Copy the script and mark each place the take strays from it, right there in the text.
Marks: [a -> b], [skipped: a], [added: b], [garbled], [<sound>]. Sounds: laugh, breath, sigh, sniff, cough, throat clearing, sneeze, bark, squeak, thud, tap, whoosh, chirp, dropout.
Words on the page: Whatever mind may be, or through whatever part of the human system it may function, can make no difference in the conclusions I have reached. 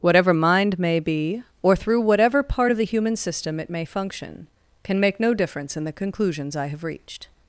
Whatever mind may be, or through whatever part of the human system it may function, can make no difference in the conclusions I have reached.